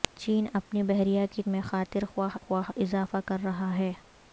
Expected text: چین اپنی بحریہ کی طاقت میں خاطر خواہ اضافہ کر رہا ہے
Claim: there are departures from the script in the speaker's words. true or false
true